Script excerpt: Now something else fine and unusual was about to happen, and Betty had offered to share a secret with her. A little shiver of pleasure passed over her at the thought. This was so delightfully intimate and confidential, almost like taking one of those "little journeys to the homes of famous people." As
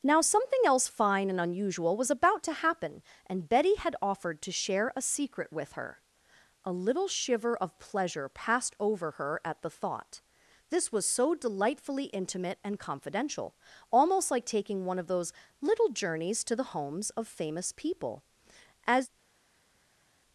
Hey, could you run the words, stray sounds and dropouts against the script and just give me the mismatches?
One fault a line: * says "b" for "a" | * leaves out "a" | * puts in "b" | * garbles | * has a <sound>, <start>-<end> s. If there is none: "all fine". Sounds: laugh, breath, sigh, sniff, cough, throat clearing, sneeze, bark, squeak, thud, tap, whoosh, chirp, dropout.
all fine